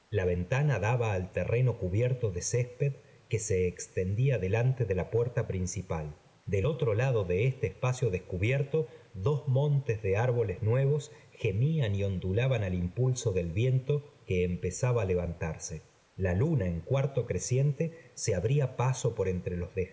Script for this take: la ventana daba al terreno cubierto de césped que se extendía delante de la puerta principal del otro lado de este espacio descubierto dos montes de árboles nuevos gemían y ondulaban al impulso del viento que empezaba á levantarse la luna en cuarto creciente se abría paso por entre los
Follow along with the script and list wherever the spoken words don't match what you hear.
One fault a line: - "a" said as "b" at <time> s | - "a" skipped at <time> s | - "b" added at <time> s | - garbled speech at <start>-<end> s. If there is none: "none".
none